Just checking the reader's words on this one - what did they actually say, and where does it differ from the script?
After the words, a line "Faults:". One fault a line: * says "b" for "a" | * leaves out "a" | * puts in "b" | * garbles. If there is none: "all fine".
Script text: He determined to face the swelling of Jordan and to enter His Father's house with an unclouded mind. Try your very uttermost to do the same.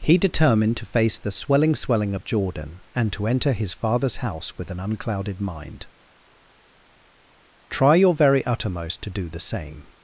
He determined to face the swelling swelling of Jordan and to enter His Father's house with an unclouded mind. Try your very uttermost to do the same.
Faults:
* puts in "swelling"